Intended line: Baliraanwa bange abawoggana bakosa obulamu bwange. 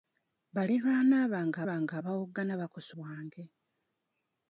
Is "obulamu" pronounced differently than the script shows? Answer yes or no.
yes